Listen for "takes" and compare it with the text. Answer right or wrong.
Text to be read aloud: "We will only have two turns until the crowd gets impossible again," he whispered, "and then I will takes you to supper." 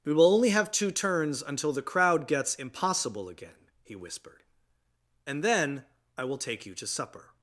wrong